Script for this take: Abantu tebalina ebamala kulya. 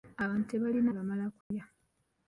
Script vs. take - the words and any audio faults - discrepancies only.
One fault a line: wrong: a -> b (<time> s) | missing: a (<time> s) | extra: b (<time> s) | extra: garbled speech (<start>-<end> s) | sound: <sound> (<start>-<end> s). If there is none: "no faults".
sound: dropout (1.4-1.5 s)